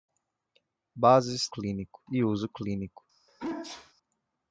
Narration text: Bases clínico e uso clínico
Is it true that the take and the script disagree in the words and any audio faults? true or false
true